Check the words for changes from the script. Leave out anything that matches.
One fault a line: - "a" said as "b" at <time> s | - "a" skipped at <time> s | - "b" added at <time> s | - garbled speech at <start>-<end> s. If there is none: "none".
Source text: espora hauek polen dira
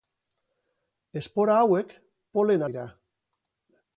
none